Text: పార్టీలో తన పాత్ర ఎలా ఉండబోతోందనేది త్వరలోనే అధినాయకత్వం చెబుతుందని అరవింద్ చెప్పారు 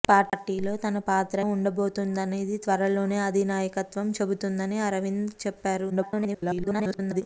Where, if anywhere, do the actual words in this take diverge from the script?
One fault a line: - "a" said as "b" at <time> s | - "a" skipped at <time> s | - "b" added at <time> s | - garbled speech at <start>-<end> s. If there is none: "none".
- "ఎలా" skipped at 1.4 s
- garbled speech at 5.9-7.2 s